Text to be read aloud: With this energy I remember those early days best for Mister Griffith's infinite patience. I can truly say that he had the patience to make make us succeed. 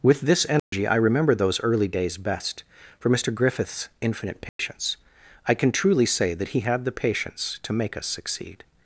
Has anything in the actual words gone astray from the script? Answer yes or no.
yes